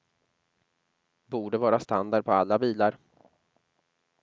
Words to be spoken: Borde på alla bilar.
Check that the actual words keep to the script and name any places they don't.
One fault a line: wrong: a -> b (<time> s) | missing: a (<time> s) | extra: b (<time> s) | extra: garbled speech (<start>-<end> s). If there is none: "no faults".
extra: vara standard (1.6 s)